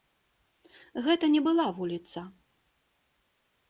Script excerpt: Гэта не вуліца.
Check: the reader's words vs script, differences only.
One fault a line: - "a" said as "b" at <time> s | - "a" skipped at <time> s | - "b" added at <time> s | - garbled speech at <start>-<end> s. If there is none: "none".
- "была" added at 1.5 s